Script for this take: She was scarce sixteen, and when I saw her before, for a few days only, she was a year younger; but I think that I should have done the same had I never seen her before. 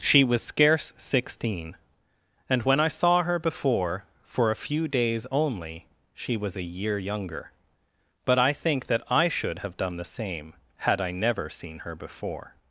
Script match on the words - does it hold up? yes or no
yes